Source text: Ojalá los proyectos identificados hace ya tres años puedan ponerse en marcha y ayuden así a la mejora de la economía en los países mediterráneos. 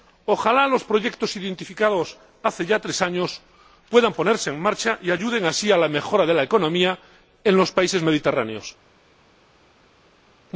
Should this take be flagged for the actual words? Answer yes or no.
no